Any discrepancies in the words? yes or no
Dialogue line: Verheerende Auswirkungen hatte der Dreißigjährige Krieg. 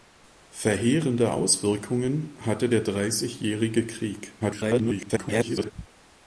yes